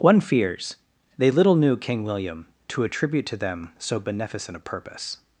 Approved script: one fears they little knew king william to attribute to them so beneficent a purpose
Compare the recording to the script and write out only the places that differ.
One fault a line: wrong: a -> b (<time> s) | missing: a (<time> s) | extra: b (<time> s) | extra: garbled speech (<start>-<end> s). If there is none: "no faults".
no faults